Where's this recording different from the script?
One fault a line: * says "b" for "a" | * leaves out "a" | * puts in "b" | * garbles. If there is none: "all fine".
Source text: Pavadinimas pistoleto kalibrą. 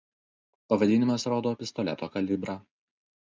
* puts in "rodo"